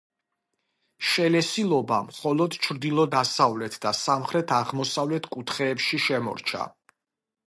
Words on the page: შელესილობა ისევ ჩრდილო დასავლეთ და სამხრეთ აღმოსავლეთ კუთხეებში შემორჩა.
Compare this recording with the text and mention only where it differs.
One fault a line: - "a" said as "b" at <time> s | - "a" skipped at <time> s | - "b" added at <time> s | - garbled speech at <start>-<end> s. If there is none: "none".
- "ისევ" said as "მხოლოდ" at 2.1 s